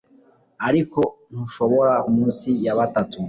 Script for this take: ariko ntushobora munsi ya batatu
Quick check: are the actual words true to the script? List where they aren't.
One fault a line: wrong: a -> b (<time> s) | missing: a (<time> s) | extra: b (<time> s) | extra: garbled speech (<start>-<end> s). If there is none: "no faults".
no faults